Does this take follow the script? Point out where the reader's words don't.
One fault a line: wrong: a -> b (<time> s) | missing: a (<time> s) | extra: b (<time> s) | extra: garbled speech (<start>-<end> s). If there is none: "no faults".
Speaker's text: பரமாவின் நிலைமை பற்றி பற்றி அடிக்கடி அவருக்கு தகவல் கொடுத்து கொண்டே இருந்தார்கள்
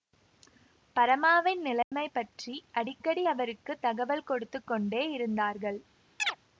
missing: பற்றி (2.5 s)